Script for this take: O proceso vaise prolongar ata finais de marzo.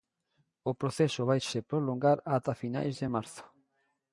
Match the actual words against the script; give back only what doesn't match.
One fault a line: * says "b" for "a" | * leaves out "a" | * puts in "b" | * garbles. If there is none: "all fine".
all fine